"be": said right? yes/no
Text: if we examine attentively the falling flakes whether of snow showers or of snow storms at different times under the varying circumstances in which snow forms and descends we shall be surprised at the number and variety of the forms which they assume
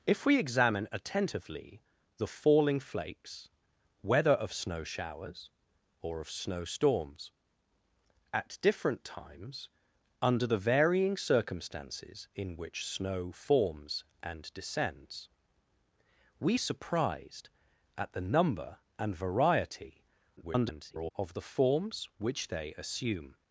no